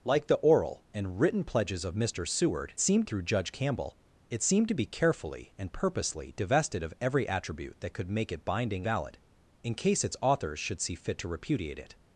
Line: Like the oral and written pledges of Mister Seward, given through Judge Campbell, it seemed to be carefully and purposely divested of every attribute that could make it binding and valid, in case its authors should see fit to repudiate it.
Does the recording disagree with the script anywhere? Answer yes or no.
yes